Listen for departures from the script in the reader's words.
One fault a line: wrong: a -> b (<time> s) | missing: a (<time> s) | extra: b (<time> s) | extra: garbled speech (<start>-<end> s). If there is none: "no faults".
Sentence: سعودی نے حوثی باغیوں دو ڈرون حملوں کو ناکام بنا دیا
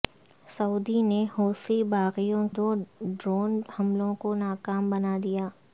no faults